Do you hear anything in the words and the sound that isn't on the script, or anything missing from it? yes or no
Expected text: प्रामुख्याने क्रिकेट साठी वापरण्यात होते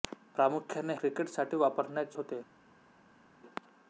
no